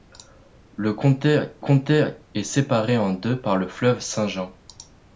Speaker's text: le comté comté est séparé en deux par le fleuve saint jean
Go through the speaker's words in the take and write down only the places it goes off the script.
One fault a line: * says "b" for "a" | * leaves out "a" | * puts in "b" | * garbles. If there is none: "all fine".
all fine